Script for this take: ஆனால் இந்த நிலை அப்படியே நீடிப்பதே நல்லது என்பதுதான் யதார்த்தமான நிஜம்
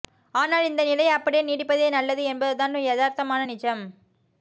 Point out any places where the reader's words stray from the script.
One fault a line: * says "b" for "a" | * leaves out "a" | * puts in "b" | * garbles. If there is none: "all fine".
all fine